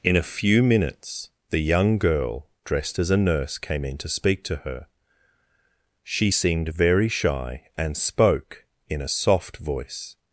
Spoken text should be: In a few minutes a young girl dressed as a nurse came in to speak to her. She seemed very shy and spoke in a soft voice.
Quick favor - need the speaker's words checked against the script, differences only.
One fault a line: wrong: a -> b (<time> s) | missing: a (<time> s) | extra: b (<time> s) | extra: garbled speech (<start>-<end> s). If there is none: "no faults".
wrong: a -> the (1.5 s)